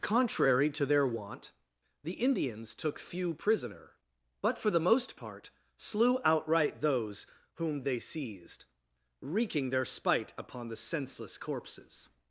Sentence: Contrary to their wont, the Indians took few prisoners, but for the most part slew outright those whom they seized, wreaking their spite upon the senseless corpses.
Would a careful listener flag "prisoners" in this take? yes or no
yes